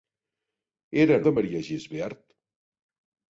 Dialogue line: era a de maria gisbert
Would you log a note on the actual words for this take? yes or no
no